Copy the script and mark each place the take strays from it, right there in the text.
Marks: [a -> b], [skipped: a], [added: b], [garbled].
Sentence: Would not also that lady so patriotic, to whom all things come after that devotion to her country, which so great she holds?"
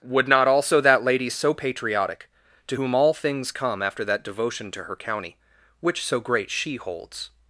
Would not also that lady so patriotic, to whom all things come after that devotion to her [country, -> county] which so great she holds?"